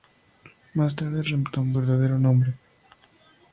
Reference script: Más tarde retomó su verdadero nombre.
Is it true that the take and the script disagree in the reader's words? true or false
true